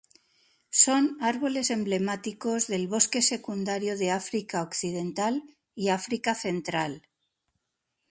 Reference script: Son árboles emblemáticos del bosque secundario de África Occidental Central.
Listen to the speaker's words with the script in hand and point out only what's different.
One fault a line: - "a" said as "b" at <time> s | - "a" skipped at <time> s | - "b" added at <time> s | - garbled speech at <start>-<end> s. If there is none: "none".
- "y África" added at 5.8 s